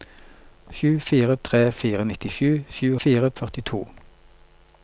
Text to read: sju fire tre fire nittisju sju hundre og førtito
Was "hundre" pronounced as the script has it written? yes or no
no